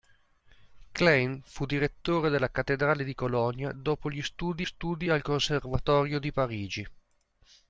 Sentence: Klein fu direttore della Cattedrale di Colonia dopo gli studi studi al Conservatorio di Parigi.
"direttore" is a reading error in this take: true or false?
false